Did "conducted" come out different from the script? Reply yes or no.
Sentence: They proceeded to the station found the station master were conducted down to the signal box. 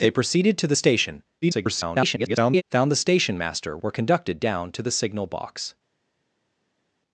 no